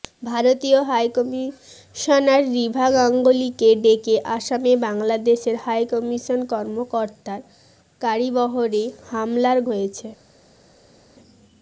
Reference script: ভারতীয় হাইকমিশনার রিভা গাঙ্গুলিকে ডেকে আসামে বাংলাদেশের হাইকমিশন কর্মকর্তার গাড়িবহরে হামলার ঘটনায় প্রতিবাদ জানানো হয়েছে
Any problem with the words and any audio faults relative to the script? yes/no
yes